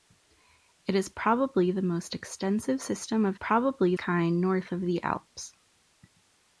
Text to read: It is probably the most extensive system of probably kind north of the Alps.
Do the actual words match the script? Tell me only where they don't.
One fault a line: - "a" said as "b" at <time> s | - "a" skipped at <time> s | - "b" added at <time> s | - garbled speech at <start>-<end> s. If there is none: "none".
none